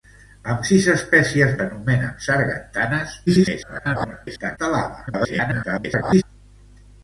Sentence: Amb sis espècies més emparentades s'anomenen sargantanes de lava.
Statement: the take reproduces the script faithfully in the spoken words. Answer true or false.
false